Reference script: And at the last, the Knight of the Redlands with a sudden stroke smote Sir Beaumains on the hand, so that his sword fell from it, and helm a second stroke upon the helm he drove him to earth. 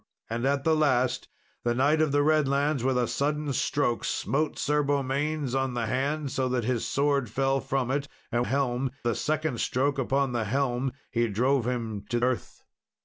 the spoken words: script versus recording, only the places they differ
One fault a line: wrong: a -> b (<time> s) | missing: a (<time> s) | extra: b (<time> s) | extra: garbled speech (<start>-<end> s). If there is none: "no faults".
no faults